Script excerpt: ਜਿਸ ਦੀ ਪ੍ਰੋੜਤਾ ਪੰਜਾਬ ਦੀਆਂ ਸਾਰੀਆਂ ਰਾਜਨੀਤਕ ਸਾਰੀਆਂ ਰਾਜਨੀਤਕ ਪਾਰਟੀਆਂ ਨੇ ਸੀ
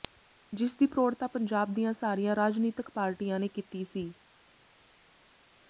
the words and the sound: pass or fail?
fail